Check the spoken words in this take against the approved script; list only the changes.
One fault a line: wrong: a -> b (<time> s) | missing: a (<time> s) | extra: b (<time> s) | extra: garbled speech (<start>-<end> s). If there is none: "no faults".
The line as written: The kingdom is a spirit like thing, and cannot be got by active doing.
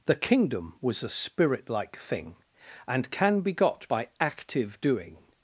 wrong: is -> was (0.8 s)
wrong: cannot -> can (3.1 s)